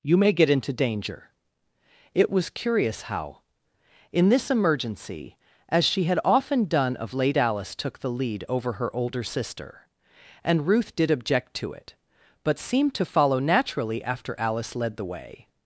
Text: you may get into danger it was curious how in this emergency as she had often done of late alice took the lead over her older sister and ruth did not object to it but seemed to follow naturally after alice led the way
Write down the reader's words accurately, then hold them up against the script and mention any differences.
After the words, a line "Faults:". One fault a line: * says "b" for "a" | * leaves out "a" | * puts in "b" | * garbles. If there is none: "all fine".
you may get into danger it was curious how in this emergency as she had often done of late alice took the lead over her older sister and ruth did object to it but seemed to follow naturally after alice led the way
Faults:
* leaves out "not"